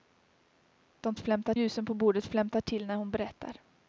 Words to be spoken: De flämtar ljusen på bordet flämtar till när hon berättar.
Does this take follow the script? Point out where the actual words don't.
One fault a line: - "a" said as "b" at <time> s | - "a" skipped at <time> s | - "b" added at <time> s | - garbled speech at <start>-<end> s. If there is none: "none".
none